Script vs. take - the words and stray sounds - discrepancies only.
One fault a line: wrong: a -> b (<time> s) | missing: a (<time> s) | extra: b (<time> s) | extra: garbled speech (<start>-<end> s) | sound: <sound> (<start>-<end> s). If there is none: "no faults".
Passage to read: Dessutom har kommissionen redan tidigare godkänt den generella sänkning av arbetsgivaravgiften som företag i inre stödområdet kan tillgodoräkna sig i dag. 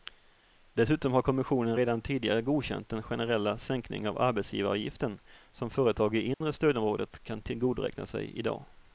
sound: dropout (6.3-6.4 s)